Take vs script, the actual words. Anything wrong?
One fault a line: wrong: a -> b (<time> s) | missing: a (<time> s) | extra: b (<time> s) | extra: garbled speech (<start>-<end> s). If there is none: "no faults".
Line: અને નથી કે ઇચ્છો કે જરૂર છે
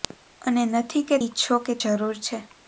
no faults